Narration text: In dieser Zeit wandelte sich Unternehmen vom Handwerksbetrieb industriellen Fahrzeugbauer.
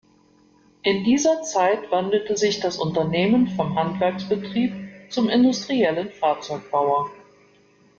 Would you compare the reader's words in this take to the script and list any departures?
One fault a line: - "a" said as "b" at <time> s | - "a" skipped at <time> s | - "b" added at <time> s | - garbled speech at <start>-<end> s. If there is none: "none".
- "das" added at 2.6 s
- "zum" added at 5.1 s